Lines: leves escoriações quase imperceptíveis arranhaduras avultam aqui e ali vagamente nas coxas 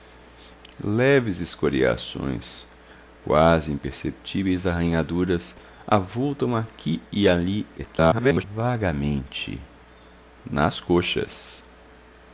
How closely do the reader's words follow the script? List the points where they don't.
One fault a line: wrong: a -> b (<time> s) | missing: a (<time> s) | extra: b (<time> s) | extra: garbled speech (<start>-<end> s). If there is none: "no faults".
extra: garbled speech (7.8-8.4 s)